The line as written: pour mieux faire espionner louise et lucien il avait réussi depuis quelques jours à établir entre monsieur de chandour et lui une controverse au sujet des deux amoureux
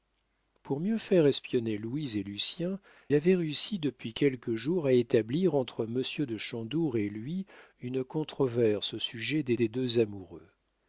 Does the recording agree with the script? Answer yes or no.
no